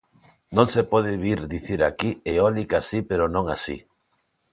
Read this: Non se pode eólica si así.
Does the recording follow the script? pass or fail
fail